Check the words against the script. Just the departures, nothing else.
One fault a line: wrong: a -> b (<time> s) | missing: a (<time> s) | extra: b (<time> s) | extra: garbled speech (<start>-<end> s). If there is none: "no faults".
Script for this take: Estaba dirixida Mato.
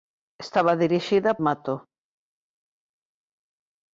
no faults